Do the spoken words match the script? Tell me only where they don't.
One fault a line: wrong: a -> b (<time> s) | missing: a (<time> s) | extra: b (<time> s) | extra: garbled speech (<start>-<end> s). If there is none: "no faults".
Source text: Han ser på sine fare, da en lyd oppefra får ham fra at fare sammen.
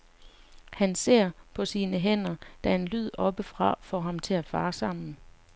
wrong: fare -> hænder (2.0 s)
wrong: fra -> til (4.2 s)